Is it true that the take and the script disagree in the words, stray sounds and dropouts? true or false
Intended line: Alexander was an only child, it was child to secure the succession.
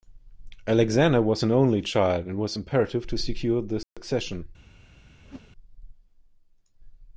true